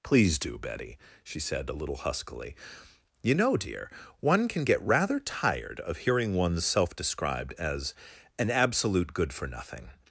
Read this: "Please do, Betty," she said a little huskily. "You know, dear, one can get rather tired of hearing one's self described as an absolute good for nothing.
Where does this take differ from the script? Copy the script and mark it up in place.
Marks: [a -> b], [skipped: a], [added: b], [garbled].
"Please do, Betty," she said a little huskily. "You know, dear, one can get rather tired of hearing one's self described as an absolute good for nothing.